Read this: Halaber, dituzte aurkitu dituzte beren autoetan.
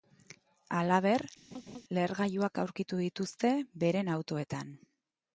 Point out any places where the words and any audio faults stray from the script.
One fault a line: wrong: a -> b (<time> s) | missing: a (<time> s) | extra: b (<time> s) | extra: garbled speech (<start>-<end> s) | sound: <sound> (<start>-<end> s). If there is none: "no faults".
sound: laugh (1.5-1.8 s)
wrong: dituzte -> lehergailuak (2.0 s)